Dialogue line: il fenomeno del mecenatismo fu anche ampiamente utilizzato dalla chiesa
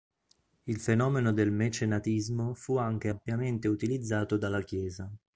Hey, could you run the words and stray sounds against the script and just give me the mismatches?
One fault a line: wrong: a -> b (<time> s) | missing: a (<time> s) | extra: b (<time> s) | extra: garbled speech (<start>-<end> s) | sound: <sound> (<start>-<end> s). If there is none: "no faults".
no faults